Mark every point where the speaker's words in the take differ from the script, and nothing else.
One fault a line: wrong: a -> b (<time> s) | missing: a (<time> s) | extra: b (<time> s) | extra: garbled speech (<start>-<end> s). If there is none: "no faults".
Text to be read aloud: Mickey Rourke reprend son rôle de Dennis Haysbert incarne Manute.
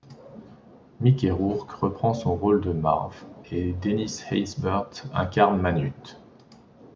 extra: Marv et (2.7 s)